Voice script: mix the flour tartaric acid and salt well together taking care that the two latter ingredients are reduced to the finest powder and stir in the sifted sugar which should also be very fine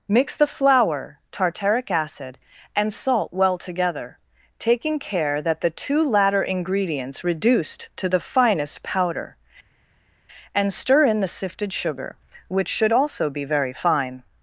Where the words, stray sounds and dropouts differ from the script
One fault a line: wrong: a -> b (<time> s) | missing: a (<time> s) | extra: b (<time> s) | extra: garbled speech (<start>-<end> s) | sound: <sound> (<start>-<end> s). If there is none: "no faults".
missing: are (7.2 s)